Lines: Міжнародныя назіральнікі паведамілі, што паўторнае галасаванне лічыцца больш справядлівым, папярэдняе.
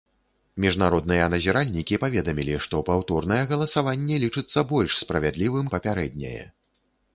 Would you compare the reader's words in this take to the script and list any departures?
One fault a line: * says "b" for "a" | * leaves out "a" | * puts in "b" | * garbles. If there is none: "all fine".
all fine